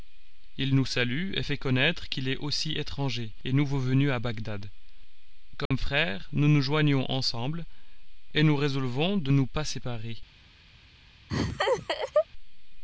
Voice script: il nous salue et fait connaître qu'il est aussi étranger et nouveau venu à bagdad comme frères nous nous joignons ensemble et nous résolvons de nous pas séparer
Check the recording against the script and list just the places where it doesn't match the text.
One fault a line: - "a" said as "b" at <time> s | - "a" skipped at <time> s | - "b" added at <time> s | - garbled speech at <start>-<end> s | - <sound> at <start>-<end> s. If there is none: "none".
- dropout at 5.7-5.7 s
- laugh at 11.3-12.3 s